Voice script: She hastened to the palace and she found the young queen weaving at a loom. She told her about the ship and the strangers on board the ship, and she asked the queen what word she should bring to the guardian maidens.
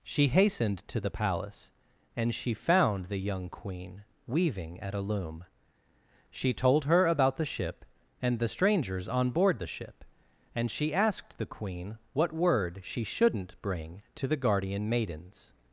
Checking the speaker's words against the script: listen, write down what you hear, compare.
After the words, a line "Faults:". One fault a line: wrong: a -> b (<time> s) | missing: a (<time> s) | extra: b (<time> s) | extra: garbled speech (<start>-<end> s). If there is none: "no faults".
She hastened to the palace and she found the young queen weaving at a loom. She told her about the ship and the strangers on board the ship, and she asked the queen what word she shouldn't bring to the guardian maidens.
Faults:
wrong: should -> shouldn't (13.0 s)